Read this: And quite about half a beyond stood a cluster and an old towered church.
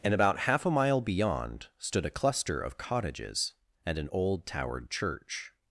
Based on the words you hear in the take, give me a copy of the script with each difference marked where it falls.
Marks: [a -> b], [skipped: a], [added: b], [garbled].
And [skipped: quite] about half a [added: mile] beyond stood a cluster [added: of cottages] and an old towered church.